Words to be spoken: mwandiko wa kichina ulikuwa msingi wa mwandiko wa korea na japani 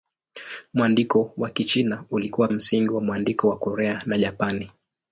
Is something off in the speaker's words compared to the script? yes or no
no